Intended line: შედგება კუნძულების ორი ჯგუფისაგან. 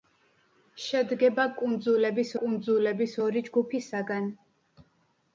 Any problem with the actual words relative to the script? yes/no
yes